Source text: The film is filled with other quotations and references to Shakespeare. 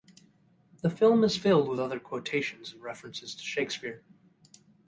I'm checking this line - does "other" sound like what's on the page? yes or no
yes